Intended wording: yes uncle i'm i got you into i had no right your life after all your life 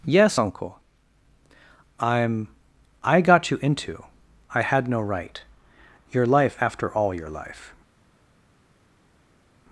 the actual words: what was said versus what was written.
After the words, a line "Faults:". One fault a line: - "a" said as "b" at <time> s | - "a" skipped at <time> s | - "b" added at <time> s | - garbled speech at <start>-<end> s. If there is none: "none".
yes uncle i'm i got you into i had no right your life after all your life
Faults:
none